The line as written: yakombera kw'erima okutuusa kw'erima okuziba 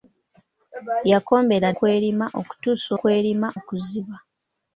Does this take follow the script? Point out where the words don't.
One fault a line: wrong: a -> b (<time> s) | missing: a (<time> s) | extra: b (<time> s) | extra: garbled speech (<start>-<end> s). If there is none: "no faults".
no faults